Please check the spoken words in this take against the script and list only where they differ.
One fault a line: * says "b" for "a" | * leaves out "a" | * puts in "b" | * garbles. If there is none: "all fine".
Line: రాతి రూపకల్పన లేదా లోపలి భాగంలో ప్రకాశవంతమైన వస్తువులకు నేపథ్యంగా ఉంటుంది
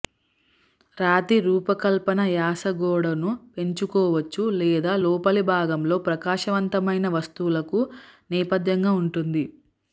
* puts in "యాస గోడను పెంచుకోవచ్చు"